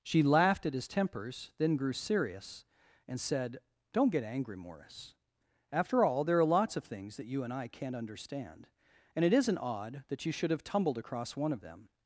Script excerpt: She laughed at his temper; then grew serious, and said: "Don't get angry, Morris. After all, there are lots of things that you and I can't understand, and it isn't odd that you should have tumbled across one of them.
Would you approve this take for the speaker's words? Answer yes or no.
no